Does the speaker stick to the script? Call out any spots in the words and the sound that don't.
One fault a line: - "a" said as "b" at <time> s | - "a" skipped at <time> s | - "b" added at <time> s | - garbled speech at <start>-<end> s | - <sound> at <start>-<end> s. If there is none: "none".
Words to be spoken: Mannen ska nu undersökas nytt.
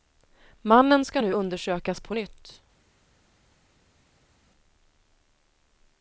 - "på" added at 2.0 s